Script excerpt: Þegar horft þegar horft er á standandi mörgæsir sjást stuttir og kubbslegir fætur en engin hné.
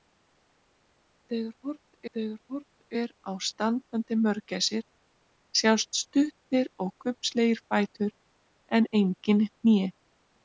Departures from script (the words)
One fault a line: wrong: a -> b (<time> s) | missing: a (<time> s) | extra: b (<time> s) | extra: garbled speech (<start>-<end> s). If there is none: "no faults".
no faults